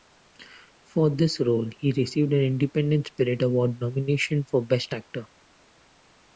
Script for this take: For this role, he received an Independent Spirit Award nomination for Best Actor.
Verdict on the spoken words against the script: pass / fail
pass